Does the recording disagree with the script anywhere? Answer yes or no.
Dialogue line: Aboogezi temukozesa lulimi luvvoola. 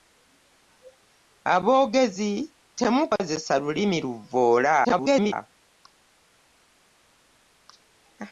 yes